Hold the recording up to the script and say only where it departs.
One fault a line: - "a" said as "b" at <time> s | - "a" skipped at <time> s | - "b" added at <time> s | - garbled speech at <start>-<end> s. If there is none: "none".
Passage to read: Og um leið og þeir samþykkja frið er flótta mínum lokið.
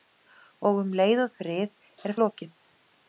- "þeir samþykkja" skipped at 1.3 s
- "flótta mínum" skipped at 2.2 s